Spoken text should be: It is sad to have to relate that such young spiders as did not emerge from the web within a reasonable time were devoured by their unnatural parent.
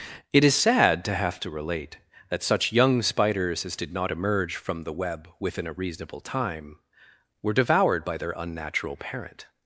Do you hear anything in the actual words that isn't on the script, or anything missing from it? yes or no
no